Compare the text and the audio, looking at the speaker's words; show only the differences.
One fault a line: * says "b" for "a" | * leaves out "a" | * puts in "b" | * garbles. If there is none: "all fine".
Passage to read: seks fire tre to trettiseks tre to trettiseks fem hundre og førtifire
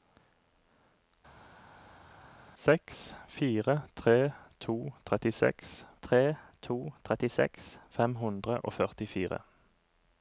all fine